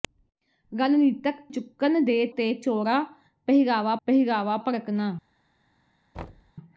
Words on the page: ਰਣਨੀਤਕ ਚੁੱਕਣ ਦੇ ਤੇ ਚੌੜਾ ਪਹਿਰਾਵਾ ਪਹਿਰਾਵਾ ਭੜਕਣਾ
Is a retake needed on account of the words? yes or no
no